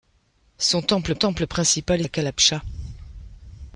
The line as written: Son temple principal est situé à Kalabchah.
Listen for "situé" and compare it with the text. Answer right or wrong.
wrong